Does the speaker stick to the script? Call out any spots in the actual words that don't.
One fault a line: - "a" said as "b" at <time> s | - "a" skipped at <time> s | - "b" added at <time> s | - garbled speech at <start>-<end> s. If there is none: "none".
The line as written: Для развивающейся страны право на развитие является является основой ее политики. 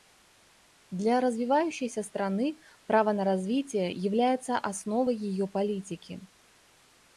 - "является" skipped at 4.6 s